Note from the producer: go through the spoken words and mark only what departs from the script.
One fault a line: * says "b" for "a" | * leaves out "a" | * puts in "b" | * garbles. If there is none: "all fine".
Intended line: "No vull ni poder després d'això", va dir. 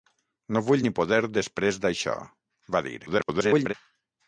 * garbles